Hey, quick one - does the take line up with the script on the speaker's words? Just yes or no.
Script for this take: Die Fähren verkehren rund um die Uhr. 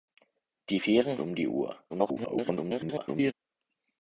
no